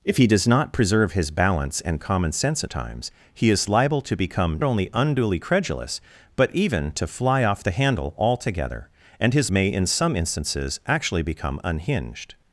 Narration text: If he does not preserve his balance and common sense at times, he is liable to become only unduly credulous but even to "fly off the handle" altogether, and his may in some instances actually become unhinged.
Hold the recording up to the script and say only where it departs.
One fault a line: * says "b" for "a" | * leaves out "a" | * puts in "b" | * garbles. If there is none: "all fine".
all fine